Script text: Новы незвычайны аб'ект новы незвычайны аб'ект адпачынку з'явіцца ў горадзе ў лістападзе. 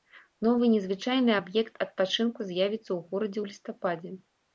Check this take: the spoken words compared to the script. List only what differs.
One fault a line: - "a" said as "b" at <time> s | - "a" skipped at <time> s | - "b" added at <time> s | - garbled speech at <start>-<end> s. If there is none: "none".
- "новы незвычайны аб'ект" skipped at 1.8 s